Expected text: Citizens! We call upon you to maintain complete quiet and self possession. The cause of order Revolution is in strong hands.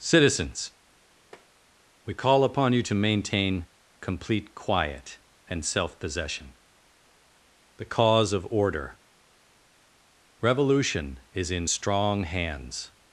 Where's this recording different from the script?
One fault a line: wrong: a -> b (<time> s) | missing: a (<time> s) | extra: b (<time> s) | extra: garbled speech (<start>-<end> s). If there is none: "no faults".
no faults